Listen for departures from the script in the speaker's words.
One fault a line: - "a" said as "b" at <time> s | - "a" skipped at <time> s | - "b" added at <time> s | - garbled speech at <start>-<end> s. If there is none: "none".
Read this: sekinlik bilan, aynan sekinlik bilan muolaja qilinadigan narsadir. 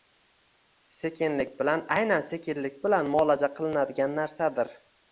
none